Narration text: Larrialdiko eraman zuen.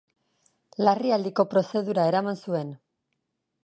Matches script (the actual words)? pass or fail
fail